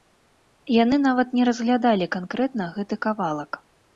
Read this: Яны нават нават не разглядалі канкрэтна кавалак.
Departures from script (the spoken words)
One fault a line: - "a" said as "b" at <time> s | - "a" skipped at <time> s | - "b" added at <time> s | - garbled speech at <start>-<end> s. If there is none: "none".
- "нават" skipped at 1.4 s
- "гэты" added at 2.8 s